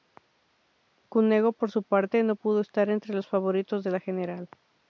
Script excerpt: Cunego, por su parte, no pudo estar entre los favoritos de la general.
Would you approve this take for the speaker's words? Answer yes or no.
yes